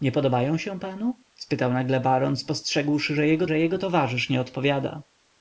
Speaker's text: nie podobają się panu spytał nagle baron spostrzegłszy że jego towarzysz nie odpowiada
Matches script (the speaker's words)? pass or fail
fail